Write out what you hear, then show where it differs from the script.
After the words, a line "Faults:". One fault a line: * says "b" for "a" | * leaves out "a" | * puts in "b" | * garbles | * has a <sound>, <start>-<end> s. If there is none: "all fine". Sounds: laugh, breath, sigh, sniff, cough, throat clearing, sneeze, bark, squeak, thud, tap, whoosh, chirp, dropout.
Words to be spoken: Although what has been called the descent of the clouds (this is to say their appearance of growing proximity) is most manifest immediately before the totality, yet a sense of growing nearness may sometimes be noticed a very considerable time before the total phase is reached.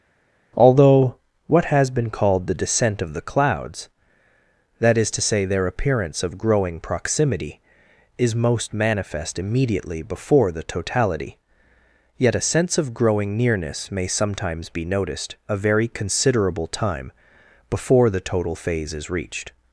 Although what has been called the descent of the clouds (that is to say their appearance of growing proximity) is most manifest immediately before the totality, yet a sense of growing nearness may sometimes be noticed a very considerable time before the total phase is reached.
Faults:
* says "that" for "this"